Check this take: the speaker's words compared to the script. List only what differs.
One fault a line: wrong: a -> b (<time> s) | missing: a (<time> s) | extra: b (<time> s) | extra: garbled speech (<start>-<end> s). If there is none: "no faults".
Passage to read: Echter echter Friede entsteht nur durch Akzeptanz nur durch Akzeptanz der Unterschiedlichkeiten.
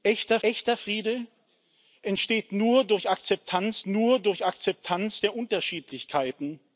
no faults